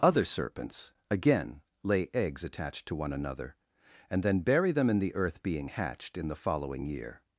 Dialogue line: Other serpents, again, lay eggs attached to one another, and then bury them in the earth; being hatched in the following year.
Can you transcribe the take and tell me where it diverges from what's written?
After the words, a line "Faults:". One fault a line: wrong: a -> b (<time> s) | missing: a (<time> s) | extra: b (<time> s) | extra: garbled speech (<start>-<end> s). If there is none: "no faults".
Other serpents, again, lay eggs attached to one another, and then bury them in the earth; being hatched in the following year.
Faults:
no faults